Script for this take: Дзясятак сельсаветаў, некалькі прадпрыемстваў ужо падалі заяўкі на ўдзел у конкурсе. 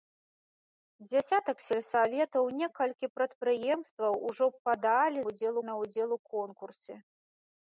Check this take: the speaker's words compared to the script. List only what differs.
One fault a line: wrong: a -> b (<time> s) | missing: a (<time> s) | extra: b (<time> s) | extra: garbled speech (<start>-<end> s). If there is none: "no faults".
wrong: заяўкі -> ўдзел (5.3 s)